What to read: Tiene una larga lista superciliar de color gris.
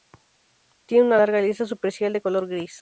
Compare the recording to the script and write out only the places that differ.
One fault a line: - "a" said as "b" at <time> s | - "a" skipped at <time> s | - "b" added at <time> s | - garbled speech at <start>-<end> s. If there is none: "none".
none